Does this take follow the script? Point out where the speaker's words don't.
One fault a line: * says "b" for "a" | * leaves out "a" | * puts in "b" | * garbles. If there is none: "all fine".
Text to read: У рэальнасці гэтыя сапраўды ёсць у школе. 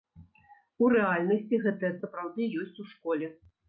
all fine